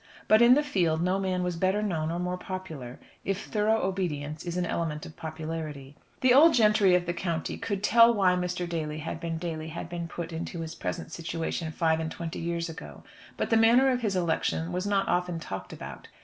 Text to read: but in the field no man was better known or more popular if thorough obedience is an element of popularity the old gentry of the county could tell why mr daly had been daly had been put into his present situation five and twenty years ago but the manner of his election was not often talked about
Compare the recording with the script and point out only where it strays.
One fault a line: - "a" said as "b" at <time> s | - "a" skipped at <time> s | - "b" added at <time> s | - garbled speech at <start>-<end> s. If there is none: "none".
none